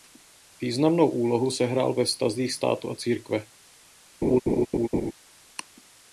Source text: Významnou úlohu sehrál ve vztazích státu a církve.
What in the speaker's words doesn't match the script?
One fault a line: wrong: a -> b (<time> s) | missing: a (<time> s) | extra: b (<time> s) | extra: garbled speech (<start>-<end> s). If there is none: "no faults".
no faults